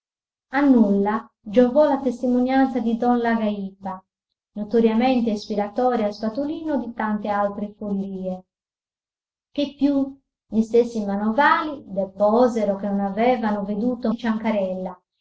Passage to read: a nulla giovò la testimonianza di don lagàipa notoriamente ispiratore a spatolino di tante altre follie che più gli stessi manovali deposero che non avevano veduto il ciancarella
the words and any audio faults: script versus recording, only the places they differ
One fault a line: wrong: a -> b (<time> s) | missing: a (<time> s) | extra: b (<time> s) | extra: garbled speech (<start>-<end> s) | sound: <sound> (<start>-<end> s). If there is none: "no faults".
no faults